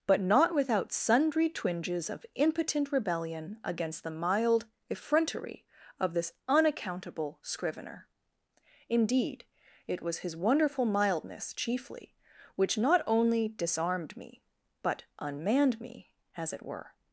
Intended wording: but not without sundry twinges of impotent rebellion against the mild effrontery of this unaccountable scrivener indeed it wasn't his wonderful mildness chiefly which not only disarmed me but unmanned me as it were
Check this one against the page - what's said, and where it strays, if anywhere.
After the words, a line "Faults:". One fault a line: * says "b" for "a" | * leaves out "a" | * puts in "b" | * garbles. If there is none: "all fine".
but not without sundry twinges of impotent rebellion against the mild effrontery of this unaccountable scrivener indeed it was his wonderful mildness chiefly which not only disarmed me but unmanned me as it were
Faults:
* says "was" for "wasn't"